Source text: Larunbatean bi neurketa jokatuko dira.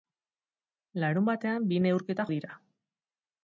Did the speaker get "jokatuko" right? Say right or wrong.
wrong